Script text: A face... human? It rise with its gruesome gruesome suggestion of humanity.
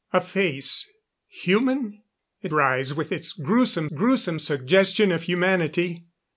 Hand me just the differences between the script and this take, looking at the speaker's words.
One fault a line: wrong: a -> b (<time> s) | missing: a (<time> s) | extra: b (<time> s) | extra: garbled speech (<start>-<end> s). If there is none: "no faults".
no faults